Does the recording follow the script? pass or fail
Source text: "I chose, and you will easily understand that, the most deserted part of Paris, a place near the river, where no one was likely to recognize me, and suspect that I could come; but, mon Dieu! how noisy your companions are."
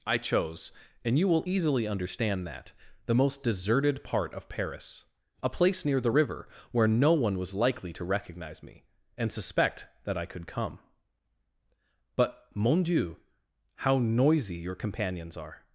pass